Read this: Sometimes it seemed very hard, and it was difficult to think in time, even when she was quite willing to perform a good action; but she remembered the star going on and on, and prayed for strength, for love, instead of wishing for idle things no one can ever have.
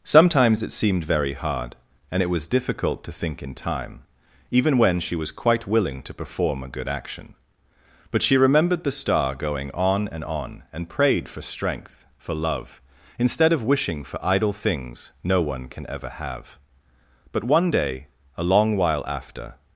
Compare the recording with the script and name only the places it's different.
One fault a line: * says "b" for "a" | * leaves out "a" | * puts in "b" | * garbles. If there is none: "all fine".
* puts in "But one day a long while after"